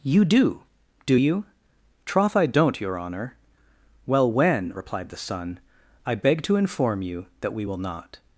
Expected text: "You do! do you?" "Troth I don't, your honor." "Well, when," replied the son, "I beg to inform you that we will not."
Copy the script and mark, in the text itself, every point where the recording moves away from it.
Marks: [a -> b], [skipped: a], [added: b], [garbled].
"You do! do you?" "Troth I don't, your honor." "Well, when," replied the son, "I beg to inform you that we will not."